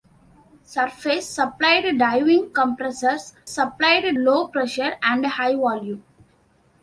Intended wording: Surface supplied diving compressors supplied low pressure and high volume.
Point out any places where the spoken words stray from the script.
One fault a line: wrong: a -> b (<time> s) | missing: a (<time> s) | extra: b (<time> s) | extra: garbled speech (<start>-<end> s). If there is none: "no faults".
no faults